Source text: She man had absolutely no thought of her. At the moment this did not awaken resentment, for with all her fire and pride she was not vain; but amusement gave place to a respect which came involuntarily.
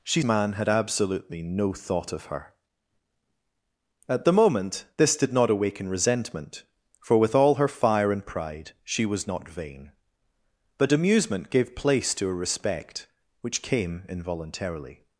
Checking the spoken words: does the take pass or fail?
pass